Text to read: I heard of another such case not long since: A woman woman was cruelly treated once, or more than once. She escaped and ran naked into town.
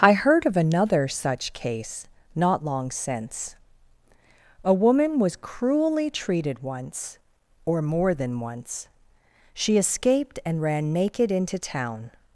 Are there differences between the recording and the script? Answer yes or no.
yes